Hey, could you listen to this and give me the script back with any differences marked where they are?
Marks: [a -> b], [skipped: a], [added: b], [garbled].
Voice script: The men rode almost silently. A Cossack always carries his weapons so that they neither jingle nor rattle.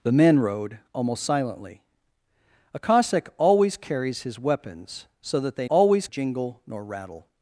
The men rode almost silently. A Cossack always carries his weapons so that they [neither -> always] jingle nor rattle.